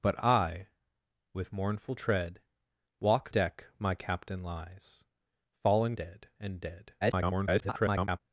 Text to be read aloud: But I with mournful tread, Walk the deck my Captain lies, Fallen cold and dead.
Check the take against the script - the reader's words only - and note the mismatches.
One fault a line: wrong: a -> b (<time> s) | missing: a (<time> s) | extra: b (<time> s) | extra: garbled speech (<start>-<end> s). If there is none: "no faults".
missing: the (3.3 s)
wrong: cold -> dead (5.9 s)
extra: garbled speech (7.0-8.2 s)